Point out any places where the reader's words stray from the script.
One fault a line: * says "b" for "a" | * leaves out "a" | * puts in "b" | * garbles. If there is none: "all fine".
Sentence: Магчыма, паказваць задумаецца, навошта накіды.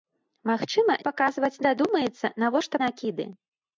all fine